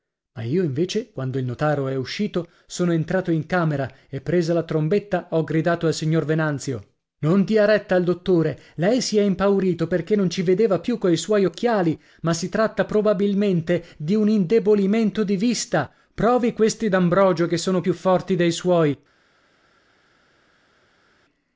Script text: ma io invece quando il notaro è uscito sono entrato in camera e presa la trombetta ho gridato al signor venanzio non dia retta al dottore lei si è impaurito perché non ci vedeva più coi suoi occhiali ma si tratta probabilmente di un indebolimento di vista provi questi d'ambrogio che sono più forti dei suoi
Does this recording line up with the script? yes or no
yes